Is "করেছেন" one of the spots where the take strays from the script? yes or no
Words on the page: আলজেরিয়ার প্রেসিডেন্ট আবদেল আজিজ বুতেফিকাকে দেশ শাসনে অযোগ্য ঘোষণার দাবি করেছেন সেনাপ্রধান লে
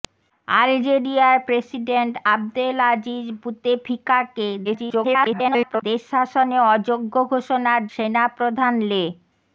yes